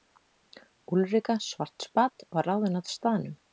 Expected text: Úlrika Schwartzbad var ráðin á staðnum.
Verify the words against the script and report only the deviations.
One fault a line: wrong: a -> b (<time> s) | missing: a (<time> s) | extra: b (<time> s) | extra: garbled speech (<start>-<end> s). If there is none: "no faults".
no faults